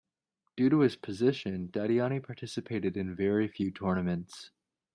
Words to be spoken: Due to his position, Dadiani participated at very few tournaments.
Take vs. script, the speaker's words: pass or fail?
fail